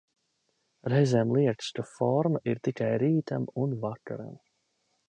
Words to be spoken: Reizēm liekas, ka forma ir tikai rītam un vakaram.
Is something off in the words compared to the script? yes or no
no